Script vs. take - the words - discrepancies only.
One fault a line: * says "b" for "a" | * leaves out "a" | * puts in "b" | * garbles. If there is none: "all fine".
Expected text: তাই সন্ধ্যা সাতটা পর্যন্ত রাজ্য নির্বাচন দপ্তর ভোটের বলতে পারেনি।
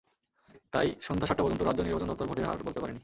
* puts in "হার"